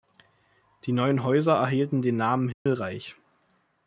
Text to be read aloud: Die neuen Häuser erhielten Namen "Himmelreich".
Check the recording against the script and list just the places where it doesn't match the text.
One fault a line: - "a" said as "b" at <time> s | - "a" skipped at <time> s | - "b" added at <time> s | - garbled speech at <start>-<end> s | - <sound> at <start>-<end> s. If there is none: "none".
- "den" added at 2.0 s
- dropout at 2.5-2.7 s